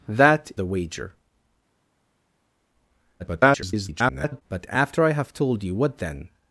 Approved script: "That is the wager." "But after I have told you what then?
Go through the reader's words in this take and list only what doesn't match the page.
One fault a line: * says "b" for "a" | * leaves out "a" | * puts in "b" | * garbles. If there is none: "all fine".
* leaves out "is"
* garbles